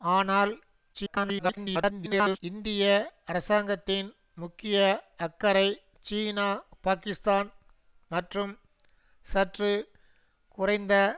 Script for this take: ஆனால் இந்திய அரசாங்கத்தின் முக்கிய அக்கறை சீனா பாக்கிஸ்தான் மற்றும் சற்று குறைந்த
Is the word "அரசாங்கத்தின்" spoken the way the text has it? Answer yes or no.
yes